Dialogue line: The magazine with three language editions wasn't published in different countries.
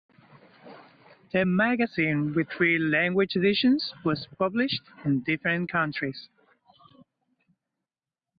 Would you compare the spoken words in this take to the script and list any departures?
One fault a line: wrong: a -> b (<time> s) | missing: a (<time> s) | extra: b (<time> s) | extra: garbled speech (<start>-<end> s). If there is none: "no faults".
wrong: wasn't -> was (4.1 s)